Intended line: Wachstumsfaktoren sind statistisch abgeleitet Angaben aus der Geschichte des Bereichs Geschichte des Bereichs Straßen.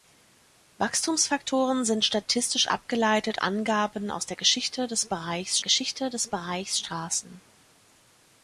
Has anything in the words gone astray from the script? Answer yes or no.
no